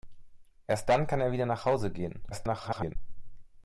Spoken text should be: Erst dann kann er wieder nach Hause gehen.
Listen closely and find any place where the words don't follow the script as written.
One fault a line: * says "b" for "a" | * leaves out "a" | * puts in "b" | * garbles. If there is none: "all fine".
* garbles